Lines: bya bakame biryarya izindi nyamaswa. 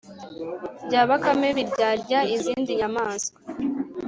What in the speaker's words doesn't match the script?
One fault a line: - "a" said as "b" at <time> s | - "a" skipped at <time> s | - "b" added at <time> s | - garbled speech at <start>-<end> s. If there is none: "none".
none